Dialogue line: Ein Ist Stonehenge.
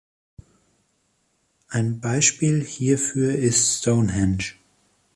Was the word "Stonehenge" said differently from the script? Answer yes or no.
no